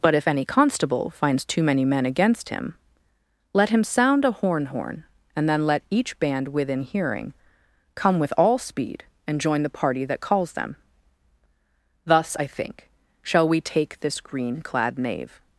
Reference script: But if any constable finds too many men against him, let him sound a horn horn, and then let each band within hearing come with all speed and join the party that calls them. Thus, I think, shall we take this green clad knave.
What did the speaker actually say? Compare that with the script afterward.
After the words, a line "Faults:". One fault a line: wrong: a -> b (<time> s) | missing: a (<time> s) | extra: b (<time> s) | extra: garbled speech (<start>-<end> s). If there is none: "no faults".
But if any constable finds too many men against him, let him sound a horn horn, and then let each band within hearing come with all speed and join the party that calls them. Thus, I think, shall we take this green clad knave.
Faults:
no faults